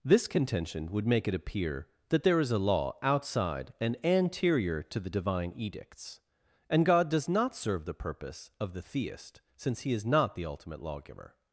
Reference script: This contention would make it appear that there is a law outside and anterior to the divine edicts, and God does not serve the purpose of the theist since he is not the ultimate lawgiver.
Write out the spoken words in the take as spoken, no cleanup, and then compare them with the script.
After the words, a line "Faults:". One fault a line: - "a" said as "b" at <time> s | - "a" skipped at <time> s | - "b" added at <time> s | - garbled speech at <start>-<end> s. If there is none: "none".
This contention would make it appear that there is a law outside and anterior to the divine edicts, and God does not serve the purpose of the theist since he is not the ultimate lawgiver.
Faults:
none